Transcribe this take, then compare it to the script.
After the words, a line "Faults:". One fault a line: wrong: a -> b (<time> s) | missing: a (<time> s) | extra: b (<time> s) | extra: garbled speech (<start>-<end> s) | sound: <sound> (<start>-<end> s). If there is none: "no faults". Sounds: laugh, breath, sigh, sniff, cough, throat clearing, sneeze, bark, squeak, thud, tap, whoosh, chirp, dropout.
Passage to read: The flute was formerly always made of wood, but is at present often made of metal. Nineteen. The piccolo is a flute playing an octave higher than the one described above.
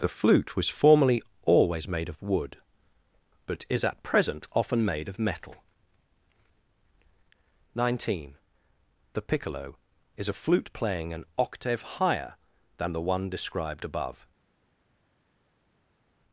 The flute was formerly always made of wood, but is at present often made of metal. Nineteen. The piccolo is a flute playing an octave higher than the one described above.
Faults:
no faults